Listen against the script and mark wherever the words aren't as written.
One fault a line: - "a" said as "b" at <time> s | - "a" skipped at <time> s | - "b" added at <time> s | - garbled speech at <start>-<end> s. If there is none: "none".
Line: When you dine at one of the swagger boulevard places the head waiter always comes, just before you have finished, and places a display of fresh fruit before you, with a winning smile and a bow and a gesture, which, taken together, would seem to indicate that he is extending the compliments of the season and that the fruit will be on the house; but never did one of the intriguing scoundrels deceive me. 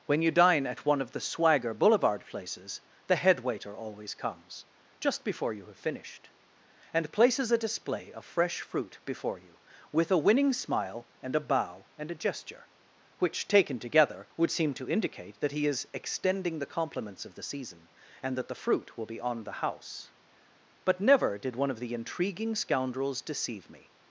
none